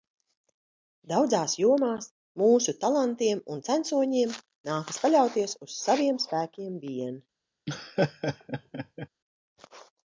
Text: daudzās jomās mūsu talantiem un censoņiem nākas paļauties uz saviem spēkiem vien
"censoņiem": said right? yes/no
yes